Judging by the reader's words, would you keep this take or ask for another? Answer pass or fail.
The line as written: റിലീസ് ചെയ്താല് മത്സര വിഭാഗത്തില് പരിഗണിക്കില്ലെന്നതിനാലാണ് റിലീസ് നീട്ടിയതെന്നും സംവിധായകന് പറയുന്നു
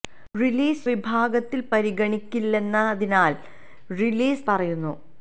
fail